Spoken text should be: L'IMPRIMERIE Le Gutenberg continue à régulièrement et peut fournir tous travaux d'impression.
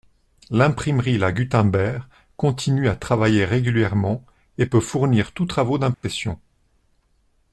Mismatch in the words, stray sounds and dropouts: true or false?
true